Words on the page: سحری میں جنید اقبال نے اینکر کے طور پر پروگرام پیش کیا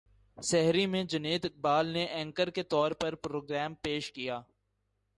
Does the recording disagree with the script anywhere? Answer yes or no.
no